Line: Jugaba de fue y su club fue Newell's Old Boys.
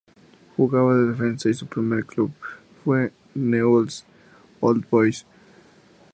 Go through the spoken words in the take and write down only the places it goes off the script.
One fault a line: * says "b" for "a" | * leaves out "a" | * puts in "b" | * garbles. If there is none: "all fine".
* says "defensa" for "fue"
* puts in "primer"